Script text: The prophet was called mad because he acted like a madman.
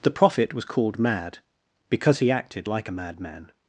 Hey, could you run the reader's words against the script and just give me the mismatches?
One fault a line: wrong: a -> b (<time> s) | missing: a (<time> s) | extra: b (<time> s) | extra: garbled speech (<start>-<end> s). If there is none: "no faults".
no faults